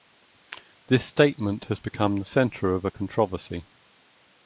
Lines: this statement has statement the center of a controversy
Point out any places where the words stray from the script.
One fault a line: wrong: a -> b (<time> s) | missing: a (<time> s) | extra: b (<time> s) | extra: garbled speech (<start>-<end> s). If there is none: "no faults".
wrong: statement -> become (1.8 s)